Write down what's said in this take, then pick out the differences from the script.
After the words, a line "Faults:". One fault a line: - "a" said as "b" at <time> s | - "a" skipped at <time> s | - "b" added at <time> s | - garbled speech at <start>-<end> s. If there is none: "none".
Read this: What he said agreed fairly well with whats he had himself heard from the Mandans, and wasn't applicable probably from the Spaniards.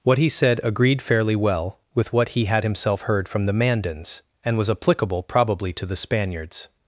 What he said agreed fairly well with what he had himself heard from the Mandans, and was applicable probably to the Spaniards.
Faults:
- "whats" said as "what" at 2.1 s
- "wasn't" said as "was" at 4.6 s
- "from" said as "to" at 5.7 s